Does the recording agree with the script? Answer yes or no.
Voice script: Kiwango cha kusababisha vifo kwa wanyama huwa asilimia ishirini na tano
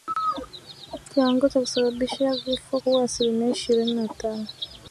no